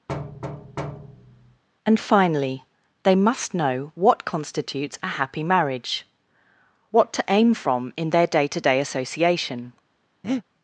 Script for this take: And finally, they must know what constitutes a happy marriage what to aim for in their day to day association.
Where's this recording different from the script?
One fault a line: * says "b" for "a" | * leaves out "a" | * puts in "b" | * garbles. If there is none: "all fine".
* says "from" for "for"